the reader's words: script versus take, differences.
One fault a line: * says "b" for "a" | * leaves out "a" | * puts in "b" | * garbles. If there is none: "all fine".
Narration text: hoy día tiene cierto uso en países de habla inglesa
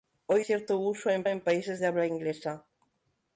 * leaves out "día tiene"
* puts in "en"